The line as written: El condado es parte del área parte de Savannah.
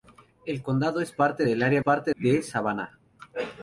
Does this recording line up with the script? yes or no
yes